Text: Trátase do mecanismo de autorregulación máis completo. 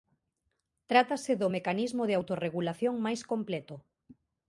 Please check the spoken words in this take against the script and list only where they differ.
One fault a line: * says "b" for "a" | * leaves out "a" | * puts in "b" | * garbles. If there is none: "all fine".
all fine